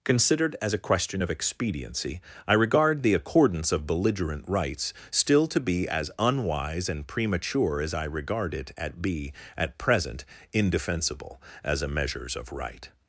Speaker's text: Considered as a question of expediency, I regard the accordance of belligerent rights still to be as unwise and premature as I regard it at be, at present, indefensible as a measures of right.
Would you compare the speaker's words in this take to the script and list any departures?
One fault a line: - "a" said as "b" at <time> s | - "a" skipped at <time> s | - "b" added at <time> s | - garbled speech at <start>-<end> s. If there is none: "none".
none